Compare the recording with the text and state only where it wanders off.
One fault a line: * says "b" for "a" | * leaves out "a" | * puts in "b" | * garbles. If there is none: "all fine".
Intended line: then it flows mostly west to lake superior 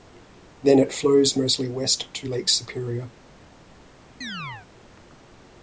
all fine